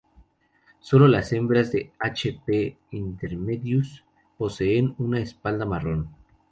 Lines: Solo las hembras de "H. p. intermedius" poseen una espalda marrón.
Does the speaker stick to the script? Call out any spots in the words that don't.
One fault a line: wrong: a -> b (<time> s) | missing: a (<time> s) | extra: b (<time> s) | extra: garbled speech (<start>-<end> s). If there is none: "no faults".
no faults